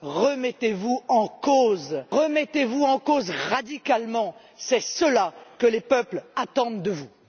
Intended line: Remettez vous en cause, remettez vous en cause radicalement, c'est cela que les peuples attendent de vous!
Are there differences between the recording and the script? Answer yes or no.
no